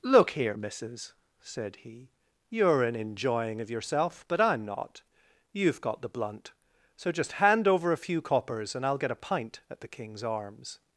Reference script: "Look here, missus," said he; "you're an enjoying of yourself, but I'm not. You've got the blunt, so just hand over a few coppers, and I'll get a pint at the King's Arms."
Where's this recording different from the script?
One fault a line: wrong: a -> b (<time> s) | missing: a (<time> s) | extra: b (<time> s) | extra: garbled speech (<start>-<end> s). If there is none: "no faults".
no faults